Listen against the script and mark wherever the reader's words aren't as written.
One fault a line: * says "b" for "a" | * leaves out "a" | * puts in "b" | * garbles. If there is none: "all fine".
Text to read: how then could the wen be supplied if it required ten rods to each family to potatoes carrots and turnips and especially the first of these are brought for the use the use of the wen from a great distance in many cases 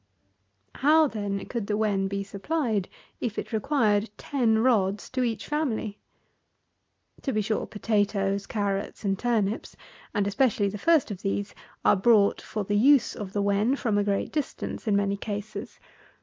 * puts in "be sure"
* leaves out "the use"